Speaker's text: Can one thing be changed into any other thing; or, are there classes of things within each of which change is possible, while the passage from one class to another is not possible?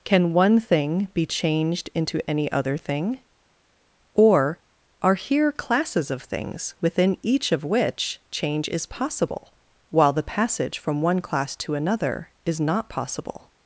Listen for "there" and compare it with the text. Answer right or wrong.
wrong